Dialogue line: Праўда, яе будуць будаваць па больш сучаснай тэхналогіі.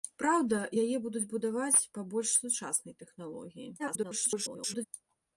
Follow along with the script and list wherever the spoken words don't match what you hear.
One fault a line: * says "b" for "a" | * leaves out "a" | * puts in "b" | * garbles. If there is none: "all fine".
* garbles